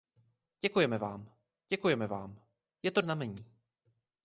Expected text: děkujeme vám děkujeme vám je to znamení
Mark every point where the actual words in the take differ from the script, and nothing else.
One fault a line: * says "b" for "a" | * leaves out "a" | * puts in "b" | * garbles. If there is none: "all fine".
all fine